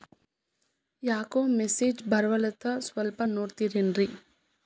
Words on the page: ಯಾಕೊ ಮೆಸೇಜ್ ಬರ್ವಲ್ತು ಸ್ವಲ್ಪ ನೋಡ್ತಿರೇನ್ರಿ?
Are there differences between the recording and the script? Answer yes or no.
no